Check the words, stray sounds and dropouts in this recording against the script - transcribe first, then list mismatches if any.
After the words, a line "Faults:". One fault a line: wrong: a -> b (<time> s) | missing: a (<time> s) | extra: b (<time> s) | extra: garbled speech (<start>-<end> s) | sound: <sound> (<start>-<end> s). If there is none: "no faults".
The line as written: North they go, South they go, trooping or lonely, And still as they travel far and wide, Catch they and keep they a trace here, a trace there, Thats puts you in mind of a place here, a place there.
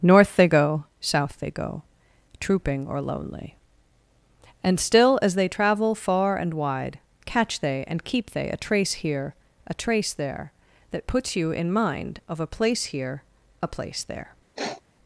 North they go, South they go, trooping or lonely, And still as they travel far and wide, Catch they and keep they a trace here, a trace there, That puts you in mind of a place here, a place there.
Faults:
wrong: Thats -> That (10.9 s)
sound: sniff (14.6-14.8 s)